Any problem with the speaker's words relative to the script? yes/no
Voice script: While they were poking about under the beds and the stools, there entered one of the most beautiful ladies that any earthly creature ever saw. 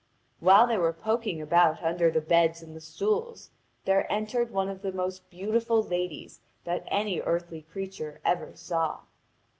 no